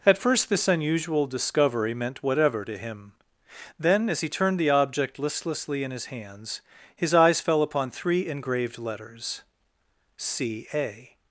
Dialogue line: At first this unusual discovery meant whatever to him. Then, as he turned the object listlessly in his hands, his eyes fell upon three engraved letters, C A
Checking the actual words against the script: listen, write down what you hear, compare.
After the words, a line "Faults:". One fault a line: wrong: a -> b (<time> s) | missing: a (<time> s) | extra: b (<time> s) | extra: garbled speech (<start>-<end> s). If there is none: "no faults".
At first this unusual discovery meant whatever to him. Then, as he turned the object listlessly in his hands, his eyes fell upon three engraved letters, C A
Faults:
no faults